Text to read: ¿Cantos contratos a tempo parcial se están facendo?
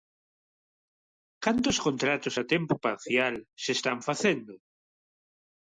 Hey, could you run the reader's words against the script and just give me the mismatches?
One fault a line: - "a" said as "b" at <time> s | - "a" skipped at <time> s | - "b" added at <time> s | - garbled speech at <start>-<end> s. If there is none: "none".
none